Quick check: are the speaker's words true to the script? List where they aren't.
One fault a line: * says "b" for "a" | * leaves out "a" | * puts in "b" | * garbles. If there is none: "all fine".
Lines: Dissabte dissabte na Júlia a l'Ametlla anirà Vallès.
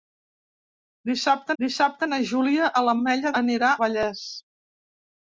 all fine